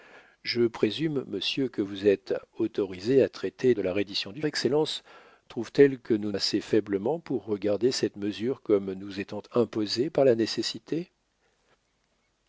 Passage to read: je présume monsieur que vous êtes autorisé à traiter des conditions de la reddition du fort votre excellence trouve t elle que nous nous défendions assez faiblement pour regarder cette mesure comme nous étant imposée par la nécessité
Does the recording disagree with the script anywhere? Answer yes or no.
yes